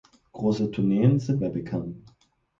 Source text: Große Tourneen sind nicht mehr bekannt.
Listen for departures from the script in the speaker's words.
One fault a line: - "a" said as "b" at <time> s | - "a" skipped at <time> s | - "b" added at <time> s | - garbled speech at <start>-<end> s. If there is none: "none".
- "nicht" skipped at 1.4 s